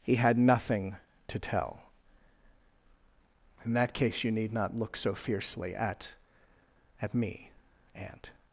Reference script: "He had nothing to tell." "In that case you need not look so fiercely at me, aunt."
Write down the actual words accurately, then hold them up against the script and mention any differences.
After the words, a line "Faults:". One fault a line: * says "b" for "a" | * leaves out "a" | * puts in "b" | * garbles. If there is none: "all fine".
"He had nothing to tell." "In that case you need not look so fiercely at at me, aunt."
Faults:
* puts in "at"